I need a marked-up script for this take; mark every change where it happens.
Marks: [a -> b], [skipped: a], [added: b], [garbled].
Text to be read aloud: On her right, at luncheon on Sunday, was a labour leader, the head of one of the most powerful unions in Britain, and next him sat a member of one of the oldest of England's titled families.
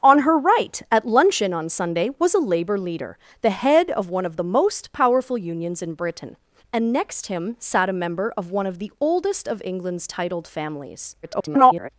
On her right, at luncheon on Sunday, was a labour leader, the head of one of the most powerful unions in Britain, and next him sat a member of one of the oldest of England's titled families. [garbled]